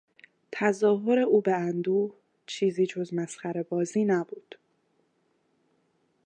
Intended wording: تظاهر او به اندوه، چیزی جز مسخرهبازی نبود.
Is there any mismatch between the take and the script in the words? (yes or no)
no